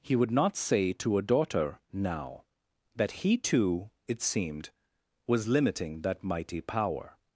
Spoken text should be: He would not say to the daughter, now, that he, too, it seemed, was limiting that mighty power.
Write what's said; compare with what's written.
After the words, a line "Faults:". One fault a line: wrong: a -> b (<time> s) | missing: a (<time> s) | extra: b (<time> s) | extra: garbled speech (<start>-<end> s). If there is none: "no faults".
He would not say to a daughter, now, that he, too, it seemed, was limiting that mighty power.
Faults:
wrong: the -> a (1.2 s)